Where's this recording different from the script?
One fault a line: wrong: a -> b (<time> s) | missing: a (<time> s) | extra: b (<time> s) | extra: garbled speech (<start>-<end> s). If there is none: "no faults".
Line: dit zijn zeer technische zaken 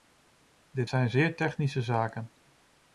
no faults